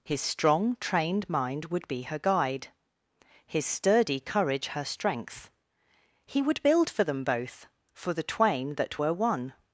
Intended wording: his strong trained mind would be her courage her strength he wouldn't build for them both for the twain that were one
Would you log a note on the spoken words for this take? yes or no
yes